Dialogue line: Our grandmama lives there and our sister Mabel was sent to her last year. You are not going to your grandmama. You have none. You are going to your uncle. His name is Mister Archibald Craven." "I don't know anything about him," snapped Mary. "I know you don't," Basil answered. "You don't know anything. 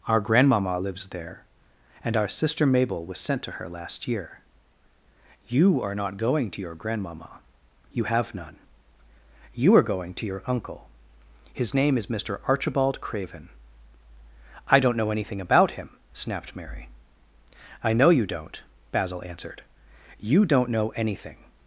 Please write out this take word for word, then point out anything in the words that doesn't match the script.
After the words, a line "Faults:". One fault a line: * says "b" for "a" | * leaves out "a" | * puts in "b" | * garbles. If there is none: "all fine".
Our grandmama lives there and our sister Mabel was sent to her last year. You are not going to your grandmama. You have none. You are going to your uncle. His name is Mister Archibald Craven." "I don't know anything about him," snapped Mary. "I know you don't," Basil answered. "You don't know anything.
Faults:
all fine